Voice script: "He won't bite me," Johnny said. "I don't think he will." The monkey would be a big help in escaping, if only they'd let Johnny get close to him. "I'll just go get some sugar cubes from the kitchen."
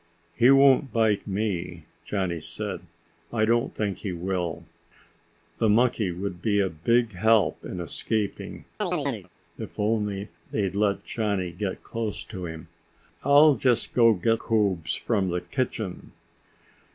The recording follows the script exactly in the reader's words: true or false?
false